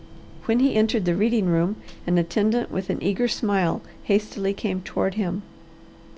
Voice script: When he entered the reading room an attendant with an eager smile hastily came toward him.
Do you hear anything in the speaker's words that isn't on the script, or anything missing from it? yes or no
no